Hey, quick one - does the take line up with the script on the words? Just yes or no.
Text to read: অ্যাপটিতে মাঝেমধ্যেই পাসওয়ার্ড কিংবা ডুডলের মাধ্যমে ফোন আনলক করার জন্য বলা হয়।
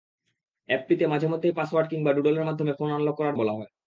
no